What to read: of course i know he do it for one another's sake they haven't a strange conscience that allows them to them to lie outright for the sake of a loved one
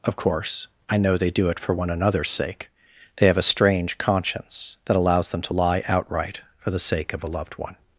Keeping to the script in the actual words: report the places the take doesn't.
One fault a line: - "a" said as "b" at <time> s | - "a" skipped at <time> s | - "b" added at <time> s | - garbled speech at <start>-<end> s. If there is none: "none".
- "he" said as "they" at 1.2 s
- "haven't" said as "have" at 3.3 s
- "them to" skipped at 5.5 s